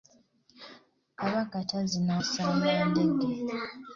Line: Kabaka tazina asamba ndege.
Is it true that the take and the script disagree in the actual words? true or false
false